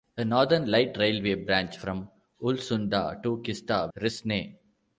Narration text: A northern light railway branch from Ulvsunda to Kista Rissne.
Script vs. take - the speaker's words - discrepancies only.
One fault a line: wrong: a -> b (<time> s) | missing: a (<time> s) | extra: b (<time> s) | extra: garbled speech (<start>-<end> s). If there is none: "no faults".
no faults